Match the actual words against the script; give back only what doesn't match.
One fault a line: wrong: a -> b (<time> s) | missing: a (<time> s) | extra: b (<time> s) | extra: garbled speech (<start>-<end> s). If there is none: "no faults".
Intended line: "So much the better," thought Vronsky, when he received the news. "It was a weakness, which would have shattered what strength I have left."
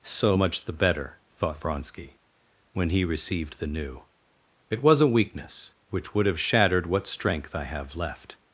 wrong: news -> new (3.7 s)